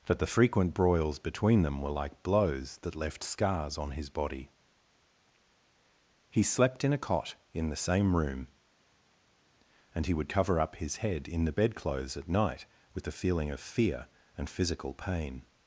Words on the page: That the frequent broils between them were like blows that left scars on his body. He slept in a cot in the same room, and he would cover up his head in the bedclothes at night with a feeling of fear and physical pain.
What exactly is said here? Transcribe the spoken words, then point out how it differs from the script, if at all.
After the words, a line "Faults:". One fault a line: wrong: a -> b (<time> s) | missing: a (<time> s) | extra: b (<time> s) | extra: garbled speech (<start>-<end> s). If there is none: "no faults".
That the frequent broils between them were like blows that left scars on his body. He slept in a cot in the same room, and he would cover up his head in the bedclothes at night with a feeling of fear and physical pain.
Faults:
no faults